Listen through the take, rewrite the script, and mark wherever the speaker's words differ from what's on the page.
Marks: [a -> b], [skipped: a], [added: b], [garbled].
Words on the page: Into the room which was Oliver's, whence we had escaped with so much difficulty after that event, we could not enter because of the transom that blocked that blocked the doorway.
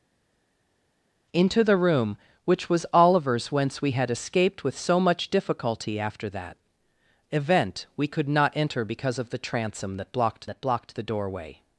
Into the room which was Oliver's, whence we had escaped with so much difficulty after that event, we could not enter because of the transom that blocked that blocked the doorway.